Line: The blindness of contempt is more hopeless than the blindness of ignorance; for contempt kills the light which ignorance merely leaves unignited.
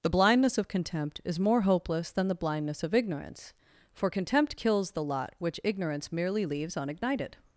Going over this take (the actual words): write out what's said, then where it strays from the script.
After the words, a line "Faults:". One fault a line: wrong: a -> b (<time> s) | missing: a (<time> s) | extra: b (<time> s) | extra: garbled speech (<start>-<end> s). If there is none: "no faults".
The blindness of contempt is more hopeless than the blindness of ignorance; for contempt kills the lot which ignorance merely leaves unignited.
Faults:
wrong: light -> lot (5.0 s)